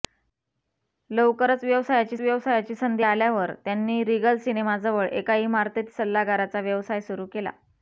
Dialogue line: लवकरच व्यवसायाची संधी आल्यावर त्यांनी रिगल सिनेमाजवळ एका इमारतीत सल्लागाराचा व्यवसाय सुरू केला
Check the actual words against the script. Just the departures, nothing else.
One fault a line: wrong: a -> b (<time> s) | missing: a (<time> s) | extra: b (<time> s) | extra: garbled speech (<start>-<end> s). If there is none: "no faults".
extra: व्यवसायाची (2.2 s)